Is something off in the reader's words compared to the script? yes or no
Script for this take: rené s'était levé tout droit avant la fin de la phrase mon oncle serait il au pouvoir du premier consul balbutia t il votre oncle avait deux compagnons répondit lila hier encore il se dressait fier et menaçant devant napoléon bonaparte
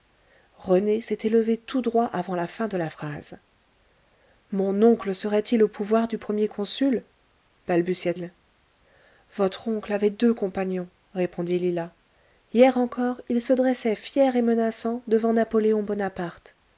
yes